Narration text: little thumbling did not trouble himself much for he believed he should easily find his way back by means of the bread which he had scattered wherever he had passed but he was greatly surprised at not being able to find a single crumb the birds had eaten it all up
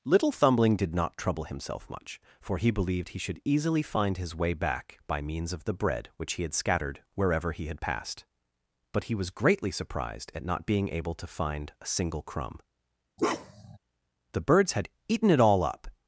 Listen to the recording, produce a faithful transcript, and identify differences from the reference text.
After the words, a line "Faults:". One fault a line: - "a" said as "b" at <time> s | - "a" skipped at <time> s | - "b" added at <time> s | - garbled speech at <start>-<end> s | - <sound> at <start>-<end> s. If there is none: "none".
little thumbling did not trouble himself much for he believed he should easily find his way back by means of the bread which he had scattered wherever he had passed but he was greatly surprised at not being able to find a single crumb the birds had eaten it all up
Faults:
- bark at 13.2-13.8 s